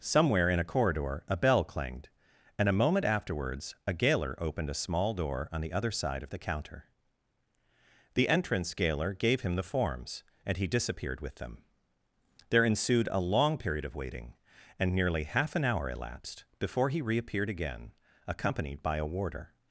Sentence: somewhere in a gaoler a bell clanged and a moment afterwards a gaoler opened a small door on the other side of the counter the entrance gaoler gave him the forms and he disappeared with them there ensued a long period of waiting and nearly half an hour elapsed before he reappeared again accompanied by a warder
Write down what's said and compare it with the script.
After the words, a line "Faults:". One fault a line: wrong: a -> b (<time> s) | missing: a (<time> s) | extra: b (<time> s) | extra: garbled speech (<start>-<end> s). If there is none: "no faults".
somewhere in a corridor a bell clanged and a moment afterwards a gaoler opened a small door on the other side of the counter the entrance gaoler gave him the forms and he disappeared with them there ensued a long period of waiting and nearly half an hour elapsed before he reappeared again accompanied by a warder
Faults:
wrong: gaoler -> corridor (0.7 s)